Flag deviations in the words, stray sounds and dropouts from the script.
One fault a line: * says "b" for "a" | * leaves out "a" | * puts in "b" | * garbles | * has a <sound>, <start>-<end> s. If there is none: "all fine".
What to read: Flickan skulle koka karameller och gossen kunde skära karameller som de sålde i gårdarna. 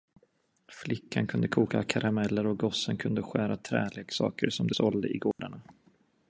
* says "kunde" for "skulle"
* says "träleksaker" for "karameller"
* has a dropout, 5.3-5.4 s